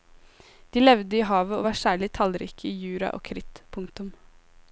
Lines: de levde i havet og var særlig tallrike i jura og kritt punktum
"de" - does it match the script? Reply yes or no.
yes